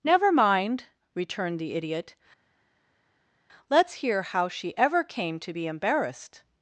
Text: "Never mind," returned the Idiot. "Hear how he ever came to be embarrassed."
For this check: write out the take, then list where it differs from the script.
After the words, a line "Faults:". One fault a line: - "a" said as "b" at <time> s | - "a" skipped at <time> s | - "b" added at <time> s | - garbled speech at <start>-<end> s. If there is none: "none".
"Never mind," returned the Idiot. "Let's hear how she ever came to be embarrassed."
Faults:
- "Let's" added at 3.7 s
- "he" said as "she" at 4.5 s